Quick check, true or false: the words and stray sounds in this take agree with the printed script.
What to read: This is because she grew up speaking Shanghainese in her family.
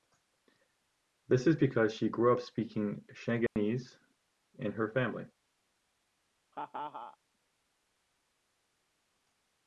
false